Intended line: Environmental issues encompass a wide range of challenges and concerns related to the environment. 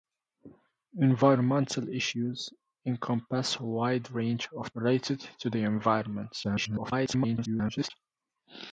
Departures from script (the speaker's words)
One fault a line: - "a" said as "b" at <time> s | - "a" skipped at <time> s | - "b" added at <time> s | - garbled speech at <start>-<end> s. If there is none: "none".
- "challenges and concerns" skipped at 4.7 s
- garbled speech at 6.4-7.9 s